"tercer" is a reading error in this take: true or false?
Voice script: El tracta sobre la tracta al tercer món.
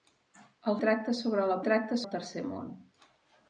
false